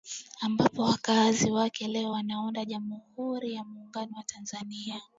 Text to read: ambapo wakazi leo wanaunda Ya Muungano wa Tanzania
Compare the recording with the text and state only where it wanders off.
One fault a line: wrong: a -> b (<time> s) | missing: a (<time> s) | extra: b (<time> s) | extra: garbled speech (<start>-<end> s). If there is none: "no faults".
extra: wake (1.5 s)
extra: Jamhuri (2.6 s)